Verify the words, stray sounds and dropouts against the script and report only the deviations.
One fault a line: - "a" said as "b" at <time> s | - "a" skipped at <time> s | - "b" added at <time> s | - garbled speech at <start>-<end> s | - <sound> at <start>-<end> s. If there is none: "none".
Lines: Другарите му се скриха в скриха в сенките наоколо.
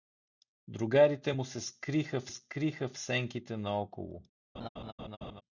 - laugh at 4.5-5.4 s